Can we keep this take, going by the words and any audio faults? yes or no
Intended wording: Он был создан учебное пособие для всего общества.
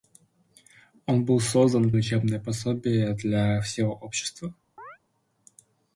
no